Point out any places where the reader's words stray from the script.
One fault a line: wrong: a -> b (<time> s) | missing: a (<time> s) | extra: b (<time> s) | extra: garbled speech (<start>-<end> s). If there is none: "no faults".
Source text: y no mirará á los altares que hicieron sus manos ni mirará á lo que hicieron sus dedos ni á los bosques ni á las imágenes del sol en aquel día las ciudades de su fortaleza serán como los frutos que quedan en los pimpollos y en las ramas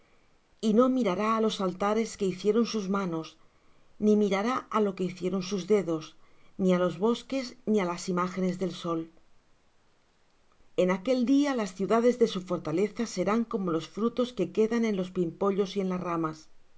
no faults